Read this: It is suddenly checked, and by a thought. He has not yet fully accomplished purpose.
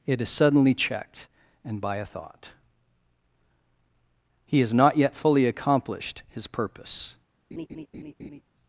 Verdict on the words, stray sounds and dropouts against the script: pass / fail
fail